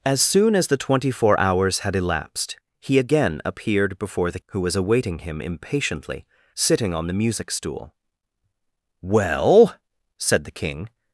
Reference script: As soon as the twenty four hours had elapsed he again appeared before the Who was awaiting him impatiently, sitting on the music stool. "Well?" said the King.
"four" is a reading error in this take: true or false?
false